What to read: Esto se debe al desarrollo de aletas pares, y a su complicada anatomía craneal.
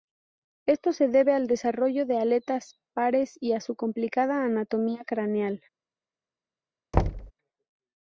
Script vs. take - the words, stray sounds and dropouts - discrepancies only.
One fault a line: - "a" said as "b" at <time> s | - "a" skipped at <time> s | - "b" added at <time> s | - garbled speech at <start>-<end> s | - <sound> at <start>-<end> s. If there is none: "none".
- thud at 6.9-7.3 s